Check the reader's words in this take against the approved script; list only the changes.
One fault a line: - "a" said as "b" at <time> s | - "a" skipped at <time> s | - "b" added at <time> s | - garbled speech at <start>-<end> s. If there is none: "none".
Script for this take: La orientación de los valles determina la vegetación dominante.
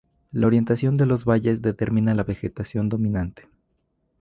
none